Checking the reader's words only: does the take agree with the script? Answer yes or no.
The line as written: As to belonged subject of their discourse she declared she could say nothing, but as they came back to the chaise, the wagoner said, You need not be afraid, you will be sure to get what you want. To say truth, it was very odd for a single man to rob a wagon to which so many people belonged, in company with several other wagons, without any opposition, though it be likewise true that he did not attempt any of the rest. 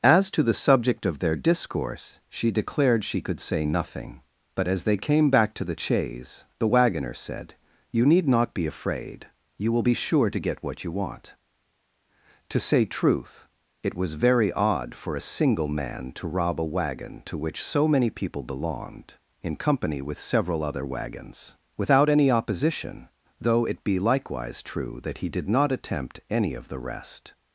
no